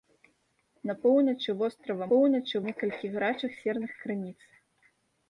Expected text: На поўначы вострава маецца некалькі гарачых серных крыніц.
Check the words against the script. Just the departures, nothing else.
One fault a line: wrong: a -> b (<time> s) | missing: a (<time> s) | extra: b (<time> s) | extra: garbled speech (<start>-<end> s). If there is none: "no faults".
wrong: маецца -> поўначы (2.1 s)